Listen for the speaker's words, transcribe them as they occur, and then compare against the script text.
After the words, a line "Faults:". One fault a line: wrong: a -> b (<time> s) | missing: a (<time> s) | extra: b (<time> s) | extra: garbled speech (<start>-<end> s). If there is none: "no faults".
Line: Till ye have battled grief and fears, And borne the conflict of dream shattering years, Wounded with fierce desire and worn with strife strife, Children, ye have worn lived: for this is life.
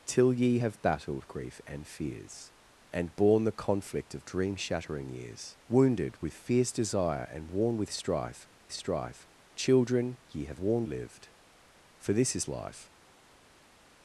Till ye have battled grief and fears, And borne the conflict of dream shattering years, Wounded with fierce desire and worn with strife strife, Children, ye have worn lived: for this is life.
Faults:
no faults